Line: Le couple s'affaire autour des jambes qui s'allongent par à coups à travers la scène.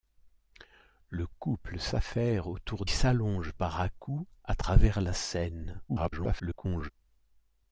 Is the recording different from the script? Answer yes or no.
yes